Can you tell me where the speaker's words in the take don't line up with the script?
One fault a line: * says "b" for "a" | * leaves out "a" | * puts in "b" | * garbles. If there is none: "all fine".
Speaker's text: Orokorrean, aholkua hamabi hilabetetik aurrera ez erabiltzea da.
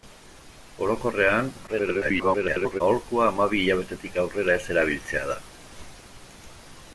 * garbles